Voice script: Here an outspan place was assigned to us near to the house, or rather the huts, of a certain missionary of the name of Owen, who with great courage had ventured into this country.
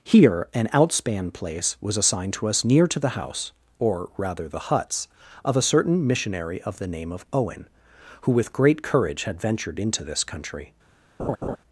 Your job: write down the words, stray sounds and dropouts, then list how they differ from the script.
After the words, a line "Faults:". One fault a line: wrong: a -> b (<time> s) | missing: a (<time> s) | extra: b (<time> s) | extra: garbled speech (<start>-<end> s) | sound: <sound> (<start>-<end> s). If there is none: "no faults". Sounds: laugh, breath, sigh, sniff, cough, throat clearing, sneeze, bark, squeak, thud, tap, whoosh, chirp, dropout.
Here an outspan place was assigned to us near to the house, or rather the huts, of a certain missionary of the name of Owen, who with great courage had ventured into this country.
Faults:
sound: laugh (11.2-11.6 s)